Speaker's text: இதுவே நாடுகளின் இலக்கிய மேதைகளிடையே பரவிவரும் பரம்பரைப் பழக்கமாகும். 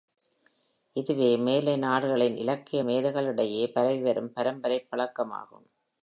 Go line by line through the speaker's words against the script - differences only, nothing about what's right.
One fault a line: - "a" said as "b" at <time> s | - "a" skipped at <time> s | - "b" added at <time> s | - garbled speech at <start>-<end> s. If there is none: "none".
- "மேலை" added at 1.4 s